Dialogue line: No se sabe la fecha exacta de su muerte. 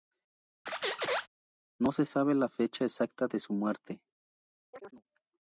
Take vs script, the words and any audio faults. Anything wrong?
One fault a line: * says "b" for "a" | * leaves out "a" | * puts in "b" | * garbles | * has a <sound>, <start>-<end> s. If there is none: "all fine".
* has a squeak, 0.7-1.3 s
* has a chirp, 4.7-5.0 s